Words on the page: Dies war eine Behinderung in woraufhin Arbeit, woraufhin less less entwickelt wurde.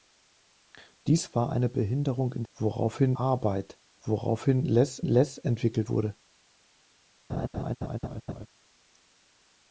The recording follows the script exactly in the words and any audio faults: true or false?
false